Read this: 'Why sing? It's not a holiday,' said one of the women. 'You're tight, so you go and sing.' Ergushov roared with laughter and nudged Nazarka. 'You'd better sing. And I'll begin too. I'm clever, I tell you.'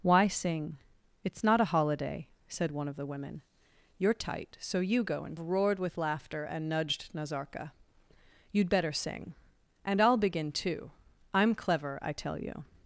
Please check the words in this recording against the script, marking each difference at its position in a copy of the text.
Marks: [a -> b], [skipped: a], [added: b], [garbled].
'Why sing? It's not a holiday,' said one of the women. 'You're tight, so you go and [skipped: sing.' Ergushov] roared with laughter and nudged Nazarka. 'You'd better sing. And I'll begin too. I'm clever, I tell you.'